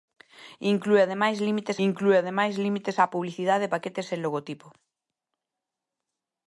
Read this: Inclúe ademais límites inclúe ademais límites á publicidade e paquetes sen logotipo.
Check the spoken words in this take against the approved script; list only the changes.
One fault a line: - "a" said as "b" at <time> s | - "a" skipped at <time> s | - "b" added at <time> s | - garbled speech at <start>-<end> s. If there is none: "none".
none